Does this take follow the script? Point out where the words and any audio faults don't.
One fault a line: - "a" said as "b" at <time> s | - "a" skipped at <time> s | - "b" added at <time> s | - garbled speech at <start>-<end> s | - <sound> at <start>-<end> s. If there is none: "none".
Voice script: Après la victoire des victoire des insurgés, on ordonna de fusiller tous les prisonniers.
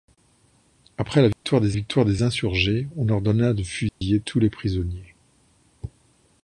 - dropout at 1.3-1.4 s
- dropout at 3.9-4.0 s